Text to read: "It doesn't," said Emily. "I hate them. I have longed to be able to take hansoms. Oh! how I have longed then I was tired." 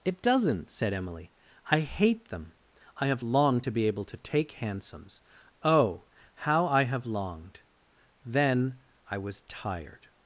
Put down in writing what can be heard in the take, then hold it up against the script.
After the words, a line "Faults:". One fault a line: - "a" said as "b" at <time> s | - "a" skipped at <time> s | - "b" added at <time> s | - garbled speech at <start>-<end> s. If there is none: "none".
"It doesn't," said Emily. "I hate them. I have longed to be able to take hansoms. Oh! how I have longed then I was tired."
Faults:
none